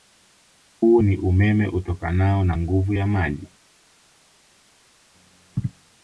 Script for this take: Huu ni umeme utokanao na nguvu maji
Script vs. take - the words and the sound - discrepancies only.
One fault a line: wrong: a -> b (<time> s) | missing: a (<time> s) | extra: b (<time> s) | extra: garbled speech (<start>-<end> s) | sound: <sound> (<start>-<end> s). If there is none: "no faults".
extra: ya (2.9 s)